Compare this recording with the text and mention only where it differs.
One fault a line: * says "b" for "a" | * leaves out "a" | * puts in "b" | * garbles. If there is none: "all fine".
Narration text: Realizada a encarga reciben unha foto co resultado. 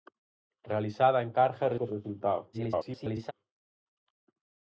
* leaves out "reciben unha foto"
* garbles